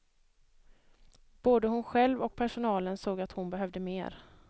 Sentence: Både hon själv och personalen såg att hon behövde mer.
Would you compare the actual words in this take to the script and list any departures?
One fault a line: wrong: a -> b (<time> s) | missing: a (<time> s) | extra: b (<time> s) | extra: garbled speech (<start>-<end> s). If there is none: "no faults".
no faults